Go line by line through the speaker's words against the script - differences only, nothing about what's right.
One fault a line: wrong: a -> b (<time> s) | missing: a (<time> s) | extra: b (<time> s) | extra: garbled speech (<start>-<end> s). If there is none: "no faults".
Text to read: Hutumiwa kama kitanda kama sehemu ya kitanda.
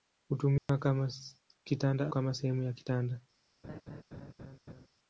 no faults